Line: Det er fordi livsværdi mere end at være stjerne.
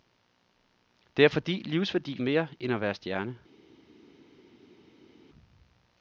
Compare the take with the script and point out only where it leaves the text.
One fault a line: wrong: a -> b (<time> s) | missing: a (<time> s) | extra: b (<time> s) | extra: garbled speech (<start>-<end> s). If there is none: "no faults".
no faults